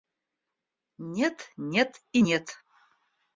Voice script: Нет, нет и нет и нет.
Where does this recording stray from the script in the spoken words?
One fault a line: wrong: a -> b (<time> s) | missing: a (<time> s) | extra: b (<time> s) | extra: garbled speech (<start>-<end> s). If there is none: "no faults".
missing: и нет (2.6 s)